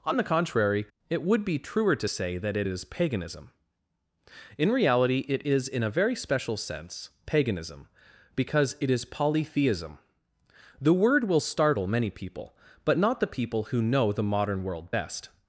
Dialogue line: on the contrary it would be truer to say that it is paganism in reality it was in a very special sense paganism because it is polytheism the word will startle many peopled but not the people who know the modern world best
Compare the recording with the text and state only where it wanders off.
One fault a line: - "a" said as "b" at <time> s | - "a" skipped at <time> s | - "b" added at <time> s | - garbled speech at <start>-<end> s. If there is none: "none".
- "was" said as "is" at 5.5 s
- "peopled" said as "people" at 12.1 s